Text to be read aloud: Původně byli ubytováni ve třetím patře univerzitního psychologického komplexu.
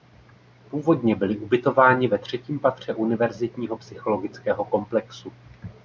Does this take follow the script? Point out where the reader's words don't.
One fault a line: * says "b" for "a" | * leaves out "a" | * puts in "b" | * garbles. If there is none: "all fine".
all fine